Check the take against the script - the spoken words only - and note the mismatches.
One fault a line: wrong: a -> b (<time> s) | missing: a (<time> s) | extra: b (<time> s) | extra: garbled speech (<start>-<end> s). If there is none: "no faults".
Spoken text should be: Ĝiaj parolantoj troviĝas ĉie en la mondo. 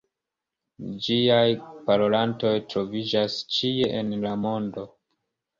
no faults